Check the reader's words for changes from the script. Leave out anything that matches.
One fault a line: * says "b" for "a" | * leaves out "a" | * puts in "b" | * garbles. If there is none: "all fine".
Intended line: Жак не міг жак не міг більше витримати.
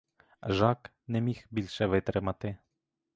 * leaves out "жак не міг"